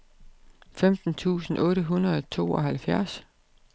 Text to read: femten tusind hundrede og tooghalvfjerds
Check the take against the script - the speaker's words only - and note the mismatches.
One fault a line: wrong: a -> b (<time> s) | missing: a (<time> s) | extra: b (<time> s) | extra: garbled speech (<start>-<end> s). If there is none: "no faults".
extra: otte (1.6 s)